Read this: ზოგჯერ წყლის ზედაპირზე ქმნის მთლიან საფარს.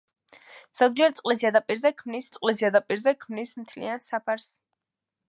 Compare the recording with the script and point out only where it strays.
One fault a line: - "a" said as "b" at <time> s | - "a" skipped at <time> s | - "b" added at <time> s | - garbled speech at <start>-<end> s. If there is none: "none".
- "წყლის ზედაპირზე ქმნის" added at 2.4 s